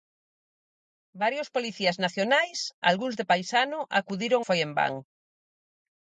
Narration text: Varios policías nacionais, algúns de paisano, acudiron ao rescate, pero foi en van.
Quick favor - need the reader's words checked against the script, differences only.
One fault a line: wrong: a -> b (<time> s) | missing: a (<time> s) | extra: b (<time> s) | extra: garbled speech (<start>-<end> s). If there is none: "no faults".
missing: ao rescate pero (4.4 s)